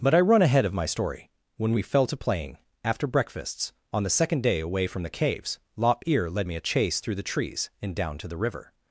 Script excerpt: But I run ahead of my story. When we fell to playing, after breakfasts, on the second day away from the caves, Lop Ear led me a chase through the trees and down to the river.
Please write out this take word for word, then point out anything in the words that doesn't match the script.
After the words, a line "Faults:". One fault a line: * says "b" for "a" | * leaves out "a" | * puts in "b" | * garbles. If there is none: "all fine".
But I run ahead of my story. When we fell to playing, after breakfasts, on the second day away from the caves, Lop Ear led me a chase through the trees and down to the river.
Faults:
all fine